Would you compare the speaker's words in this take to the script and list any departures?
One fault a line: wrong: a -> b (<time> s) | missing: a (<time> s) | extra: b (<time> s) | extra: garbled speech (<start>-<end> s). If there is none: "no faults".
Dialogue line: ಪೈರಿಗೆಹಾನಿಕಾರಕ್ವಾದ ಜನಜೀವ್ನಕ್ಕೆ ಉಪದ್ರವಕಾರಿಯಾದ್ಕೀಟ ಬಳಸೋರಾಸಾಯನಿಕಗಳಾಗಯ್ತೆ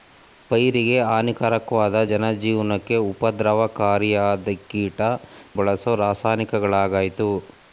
no faults